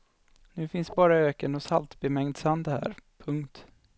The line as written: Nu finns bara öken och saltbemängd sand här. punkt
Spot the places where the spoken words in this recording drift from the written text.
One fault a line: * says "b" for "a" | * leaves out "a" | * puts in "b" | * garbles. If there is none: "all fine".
all fine